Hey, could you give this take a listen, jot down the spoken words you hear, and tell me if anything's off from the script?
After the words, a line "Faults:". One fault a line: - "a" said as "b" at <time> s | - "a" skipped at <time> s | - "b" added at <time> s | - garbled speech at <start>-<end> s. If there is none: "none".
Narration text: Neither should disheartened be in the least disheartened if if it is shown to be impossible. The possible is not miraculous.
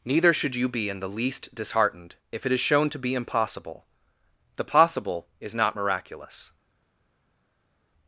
Neither should you be in the least disheartened if it is shown to be impossible. The possible is not miraculous.
Faults:
- "disheartened" said as "you" at 0.6 s
- "if" skipped at 2.5 s